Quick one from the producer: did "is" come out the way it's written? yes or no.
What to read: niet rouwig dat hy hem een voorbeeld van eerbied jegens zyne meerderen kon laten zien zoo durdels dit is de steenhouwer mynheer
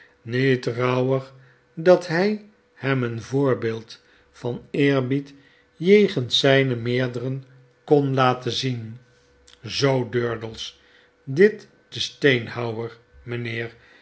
no